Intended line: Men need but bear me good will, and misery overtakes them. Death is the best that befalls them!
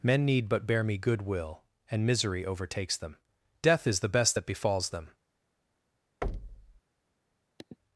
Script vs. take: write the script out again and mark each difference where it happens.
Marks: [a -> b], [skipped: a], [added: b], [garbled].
Men need but bear me good will, and misery overtakes them. Death is the best that befalls them!